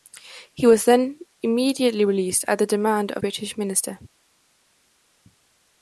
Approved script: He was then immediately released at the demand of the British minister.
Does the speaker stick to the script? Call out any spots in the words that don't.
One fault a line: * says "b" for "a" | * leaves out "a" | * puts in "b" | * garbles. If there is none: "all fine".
* leaves out "the"